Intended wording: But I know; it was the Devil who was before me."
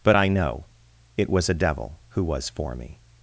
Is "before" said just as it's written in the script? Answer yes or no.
no